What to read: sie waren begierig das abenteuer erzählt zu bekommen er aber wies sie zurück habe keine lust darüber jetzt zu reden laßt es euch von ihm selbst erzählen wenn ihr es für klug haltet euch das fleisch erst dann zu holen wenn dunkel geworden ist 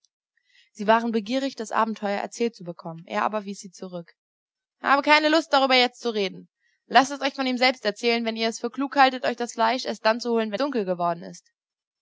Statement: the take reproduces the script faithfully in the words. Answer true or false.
true